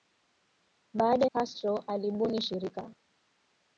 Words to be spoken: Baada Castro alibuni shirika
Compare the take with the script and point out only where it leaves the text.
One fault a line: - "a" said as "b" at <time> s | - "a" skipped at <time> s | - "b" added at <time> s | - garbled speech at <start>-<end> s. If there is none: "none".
none